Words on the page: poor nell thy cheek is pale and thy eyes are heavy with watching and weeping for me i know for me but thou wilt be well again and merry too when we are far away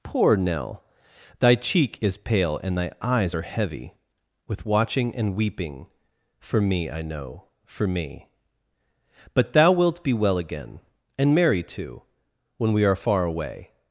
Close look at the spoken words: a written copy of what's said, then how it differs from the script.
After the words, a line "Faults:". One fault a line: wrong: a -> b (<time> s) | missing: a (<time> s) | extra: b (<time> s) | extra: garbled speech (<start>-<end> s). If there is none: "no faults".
poor nell thy cheek is pale and thy eyes are heavy with watching and weeping for me i know for me but thou wilt be well again and merry too when we are far away
Faults:
no faults